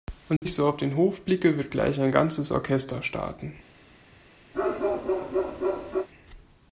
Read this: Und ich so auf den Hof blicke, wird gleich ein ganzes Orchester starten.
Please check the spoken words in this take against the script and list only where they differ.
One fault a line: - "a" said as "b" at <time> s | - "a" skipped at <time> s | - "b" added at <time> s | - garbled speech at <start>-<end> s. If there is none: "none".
none